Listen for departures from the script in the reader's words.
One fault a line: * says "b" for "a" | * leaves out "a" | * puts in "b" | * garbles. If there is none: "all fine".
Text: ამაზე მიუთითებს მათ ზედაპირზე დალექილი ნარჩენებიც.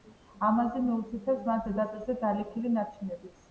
all fine